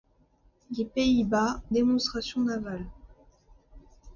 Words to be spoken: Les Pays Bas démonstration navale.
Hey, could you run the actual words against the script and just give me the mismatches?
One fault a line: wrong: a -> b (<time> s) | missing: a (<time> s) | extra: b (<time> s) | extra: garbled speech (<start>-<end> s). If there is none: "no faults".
no faults